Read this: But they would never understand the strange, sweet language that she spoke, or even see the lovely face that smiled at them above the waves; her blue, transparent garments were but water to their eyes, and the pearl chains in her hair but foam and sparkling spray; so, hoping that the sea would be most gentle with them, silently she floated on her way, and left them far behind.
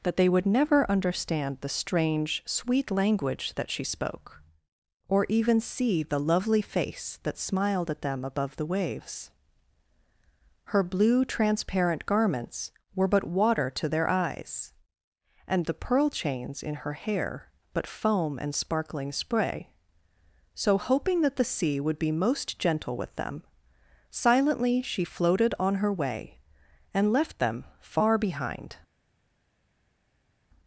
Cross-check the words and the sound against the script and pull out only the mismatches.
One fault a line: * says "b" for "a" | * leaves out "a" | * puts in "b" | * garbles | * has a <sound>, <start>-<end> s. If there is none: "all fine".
* says "That" for "But"